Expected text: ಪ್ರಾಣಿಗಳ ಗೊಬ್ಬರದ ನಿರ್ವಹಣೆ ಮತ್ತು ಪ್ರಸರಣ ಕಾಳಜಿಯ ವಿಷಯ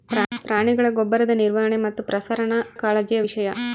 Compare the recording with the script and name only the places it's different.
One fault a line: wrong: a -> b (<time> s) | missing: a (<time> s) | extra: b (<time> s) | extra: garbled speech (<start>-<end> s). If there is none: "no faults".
no faults